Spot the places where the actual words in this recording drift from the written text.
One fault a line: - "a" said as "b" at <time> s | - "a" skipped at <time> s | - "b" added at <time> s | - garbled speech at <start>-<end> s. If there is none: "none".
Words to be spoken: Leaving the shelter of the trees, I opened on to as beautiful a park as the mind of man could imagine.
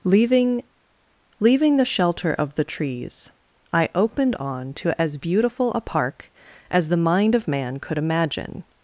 - "leaving" added at 1.4 s